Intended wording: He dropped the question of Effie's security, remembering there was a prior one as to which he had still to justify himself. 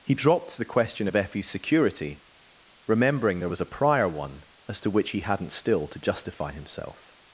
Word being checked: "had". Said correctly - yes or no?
no